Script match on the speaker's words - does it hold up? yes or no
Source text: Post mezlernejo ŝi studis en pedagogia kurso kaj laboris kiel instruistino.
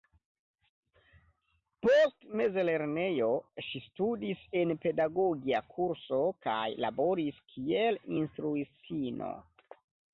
yes